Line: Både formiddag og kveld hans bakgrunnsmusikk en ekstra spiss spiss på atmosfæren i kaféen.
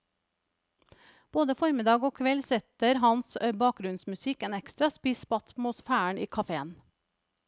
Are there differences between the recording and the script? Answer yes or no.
yes